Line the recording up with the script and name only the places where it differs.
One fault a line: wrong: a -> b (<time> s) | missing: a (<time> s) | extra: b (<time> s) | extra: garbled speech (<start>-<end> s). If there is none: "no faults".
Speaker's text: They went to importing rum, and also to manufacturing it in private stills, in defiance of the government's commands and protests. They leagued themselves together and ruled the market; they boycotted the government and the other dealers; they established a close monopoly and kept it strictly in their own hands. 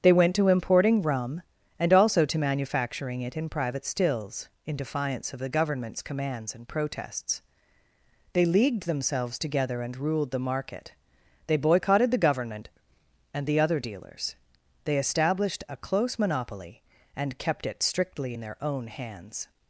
no faults